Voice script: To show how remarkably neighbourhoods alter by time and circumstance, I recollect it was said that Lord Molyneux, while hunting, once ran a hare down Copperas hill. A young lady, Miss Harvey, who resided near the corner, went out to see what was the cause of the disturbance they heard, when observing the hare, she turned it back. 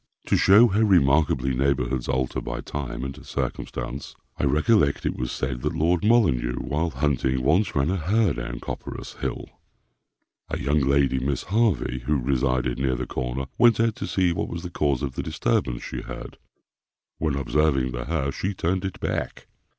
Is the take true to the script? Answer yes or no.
no